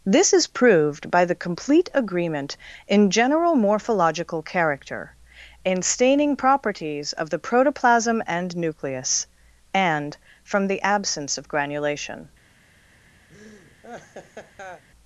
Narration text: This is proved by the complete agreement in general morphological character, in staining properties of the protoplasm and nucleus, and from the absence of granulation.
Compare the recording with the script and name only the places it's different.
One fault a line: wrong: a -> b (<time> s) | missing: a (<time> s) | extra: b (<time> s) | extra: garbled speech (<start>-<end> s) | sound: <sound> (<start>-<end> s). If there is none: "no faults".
sound: laugh (13.3-14.8 s)